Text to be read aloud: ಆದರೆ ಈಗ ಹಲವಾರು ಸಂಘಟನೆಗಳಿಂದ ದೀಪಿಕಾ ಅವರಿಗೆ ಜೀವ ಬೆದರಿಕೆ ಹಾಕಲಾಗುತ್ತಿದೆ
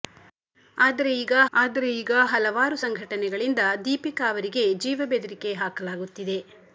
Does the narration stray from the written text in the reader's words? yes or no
yes